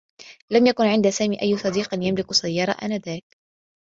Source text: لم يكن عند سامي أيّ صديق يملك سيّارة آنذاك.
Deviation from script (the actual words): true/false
false